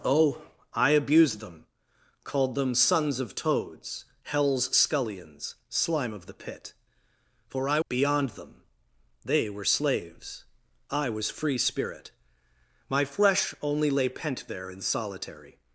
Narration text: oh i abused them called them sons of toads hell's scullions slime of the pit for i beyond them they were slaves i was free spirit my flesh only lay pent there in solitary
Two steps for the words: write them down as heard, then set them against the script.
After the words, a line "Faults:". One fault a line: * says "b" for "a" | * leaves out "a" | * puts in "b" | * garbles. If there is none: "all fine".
oh i abused them called them sons of toads hell's scullions slime of the pit for i beyond them they were slaves i was free spirit my flesh only lay pent there in solitary
Faults:
all fine